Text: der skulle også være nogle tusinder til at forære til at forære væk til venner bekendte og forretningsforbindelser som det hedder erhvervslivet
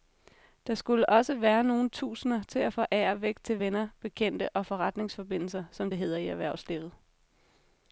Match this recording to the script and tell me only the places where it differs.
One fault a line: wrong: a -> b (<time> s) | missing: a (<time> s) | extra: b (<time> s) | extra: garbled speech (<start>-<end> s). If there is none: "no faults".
missing: til at forære (3.2 s)
extra: i (6.1 s)